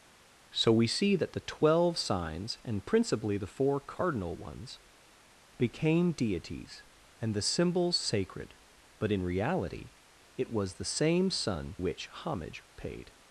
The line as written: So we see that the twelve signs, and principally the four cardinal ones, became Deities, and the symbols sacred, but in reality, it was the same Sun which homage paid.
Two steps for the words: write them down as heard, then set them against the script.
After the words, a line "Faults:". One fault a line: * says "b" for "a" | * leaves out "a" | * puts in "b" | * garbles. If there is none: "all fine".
So we see that the twelve signs, and principally the four cardinal ones, became Deities, and the symbols sacred, but in reality, it was the same Sun which homage paid.
Faults:
all fine